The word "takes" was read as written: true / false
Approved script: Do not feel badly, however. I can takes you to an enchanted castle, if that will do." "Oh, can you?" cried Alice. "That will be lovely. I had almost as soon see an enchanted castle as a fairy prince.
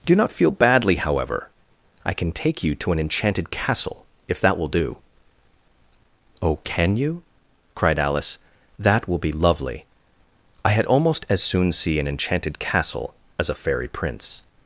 false